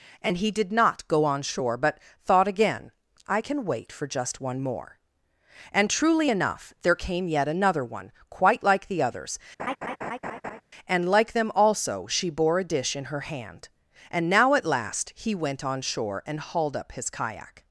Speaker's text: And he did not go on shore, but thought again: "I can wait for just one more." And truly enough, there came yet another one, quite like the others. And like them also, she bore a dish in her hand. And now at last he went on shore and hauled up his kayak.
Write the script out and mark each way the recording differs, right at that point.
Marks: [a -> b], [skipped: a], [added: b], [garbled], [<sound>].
And he did not go on shore, but thought again: "I can wait for just one more." And truly enough, there came yet another one, quite like the others. [laugh] And like them also, she bore a dish in her hand. And now at last he went on shore and hauled up his kayak.